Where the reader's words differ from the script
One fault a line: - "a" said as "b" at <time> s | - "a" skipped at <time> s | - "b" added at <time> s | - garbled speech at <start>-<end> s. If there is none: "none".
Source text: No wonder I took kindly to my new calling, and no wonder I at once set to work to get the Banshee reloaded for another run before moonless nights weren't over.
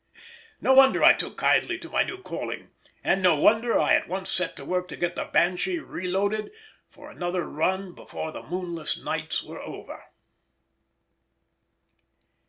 - "the" added at 8.3 s
- "weren't" said as "were" at 9.4 s